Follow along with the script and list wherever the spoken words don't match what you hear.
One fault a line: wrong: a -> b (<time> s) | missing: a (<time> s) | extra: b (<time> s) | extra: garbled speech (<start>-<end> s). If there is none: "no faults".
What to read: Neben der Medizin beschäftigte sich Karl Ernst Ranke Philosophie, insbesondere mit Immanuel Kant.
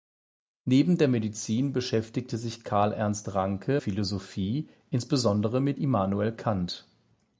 no faults